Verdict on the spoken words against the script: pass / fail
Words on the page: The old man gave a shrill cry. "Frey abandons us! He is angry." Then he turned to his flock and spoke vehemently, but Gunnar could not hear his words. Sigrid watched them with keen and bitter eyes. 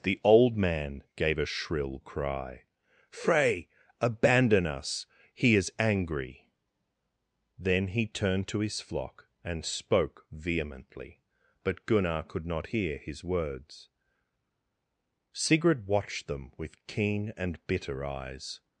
fail